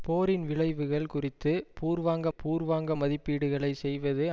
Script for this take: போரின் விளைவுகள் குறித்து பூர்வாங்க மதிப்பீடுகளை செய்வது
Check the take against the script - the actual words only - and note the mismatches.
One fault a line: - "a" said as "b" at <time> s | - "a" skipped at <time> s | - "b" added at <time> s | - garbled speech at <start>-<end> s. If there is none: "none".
- "பூர்வாங்க" added at 2.4 s